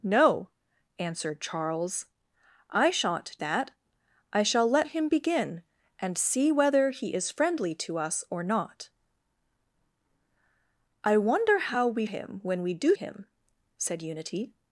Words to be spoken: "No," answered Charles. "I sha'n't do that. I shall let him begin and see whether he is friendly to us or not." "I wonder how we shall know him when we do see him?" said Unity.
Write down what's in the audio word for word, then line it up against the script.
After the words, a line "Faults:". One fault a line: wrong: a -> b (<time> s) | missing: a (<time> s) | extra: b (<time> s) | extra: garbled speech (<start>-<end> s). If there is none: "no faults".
"No," answered Charles. "I sha'n't that. I shall let him begin and see whether he is friendly to us or not." "I wonder how we him when we do him?" said Unity.
Faults:
missing: do (3.4 s)
missing: shall know (12.0 s)
missing: see (13.0 s)